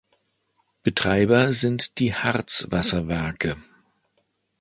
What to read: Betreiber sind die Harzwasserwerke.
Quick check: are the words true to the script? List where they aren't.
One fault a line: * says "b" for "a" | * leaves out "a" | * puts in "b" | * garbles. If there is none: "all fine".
all fine